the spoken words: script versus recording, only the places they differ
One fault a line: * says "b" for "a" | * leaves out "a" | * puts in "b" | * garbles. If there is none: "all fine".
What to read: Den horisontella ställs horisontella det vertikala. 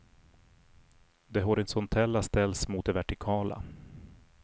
* says "Det" for "Den"
* says "mot" for "horisontella"